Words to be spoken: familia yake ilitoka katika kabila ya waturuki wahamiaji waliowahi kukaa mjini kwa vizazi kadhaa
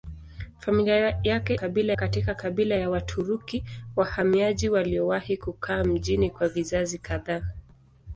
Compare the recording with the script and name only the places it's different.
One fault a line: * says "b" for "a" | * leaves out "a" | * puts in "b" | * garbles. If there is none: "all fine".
* says "kabila" for "ilitoka"